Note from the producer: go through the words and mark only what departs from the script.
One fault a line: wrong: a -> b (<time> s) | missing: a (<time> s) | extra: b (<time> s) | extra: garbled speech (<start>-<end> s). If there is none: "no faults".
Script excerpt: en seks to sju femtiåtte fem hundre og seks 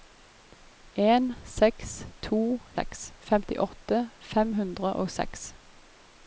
wrong: sju -> seks (2.8 s)